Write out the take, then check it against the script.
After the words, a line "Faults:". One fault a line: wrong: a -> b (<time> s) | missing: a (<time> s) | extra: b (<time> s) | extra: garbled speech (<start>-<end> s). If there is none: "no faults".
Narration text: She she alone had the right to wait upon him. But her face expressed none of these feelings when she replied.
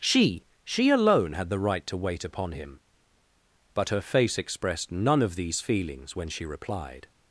She she alone had the right to wait upon him. But her face expressed none of these feelings when she replied.
Faults:
no faults